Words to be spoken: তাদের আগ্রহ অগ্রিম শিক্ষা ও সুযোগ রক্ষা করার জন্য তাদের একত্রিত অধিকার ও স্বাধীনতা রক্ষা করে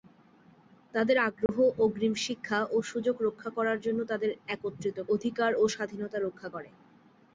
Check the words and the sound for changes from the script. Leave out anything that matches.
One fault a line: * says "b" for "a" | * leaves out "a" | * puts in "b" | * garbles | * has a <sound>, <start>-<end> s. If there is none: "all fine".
* has a dropout, 1.5-1.5 s